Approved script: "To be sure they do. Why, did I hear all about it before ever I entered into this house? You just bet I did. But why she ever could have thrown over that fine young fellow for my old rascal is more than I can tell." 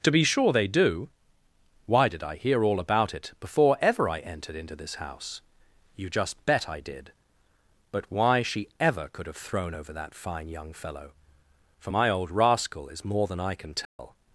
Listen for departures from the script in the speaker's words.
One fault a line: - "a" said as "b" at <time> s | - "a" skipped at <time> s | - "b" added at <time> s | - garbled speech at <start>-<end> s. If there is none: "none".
none